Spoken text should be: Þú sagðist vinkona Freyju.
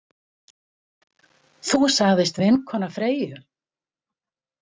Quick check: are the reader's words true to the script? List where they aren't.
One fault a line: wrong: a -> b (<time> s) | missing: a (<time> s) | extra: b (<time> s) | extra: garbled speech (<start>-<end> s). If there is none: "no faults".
no faults